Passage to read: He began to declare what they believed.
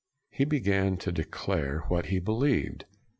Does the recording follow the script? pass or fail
fail